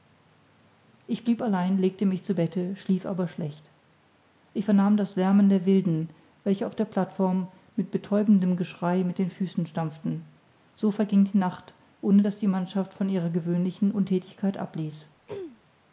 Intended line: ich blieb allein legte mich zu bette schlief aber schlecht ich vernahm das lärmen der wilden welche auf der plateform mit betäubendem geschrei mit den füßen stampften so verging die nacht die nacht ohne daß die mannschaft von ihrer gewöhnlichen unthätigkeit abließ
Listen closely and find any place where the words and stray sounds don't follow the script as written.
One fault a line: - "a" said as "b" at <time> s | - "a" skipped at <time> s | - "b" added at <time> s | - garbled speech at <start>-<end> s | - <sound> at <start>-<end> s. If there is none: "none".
- "die nacht" skipped at 11.7 s
- throat clearing at 15.3-15.6 s